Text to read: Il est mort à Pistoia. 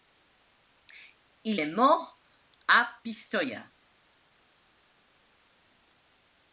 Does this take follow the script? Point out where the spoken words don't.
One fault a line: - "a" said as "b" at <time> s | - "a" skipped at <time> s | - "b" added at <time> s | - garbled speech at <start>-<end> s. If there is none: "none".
none